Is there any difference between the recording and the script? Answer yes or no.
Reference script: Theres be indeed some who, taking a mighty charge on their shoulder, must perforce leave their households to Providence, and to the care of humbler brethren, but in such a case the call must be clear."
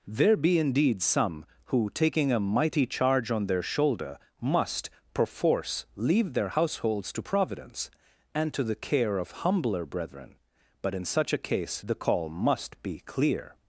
yes